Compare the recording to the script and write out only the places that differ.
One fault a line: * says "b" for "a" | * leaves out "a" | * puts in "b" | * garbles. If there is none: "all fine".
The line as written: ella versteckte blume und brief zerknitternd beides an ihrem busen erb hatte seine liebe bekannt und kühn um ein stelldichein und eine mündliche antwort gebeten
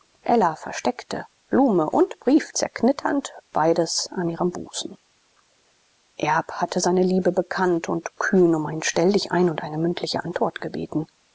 all fine